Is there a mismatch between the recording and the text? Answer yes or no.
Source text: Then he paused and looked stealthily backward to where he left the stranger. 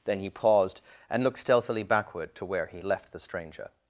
no